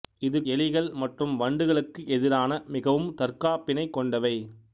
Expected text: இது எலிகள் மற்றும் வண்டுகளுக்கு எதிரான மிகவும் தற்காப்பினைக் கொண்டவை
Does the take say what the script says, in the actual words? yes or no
yes